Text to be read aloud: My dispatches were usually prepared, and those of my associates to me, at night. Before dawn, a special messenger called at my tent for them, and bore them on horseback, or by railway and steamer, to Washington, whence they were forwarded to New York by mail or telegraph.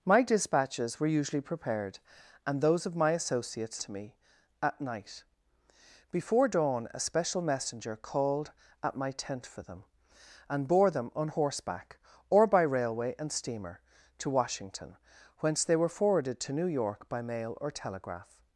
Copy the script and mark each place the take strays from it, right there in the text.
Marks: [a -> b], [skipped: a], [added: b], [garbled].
My dispatches were usually prepared, and those of my associates to me, at night. Before dawn, a special messenger called at my tent for them, and bore them on horseback, or by railway and steamer, to Washington, whence they were forwarded to New York by mail or telegraph.